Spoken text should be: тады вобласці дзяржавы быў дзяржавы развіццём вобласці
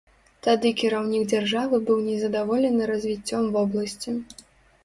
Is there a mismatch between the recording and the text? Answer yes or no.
yes